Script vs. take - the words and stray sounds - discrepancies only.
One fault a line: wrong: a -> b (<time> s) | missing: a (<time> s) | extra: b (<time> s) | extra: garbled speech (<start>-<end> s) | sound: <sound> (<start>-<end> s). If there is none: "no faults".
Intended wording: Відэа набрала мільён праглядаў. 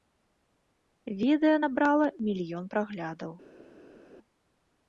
no faults